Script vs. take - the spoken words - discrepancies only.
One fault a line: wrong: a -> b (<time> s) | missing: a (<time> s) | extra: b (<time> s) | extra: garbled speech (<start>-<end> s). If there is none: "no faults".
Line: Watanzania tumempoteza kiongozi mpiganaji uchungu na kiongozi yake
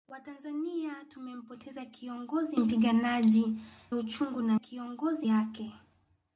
no faults